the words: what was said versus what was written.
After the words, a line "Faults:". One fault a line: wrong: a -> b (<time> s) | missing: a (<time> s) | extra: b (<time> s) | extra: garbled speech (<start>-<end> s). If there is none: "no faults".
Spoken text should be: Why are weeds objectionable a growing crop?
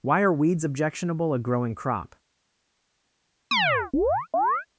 Why are weeds objectionable a growing crop?
Faults:
no faults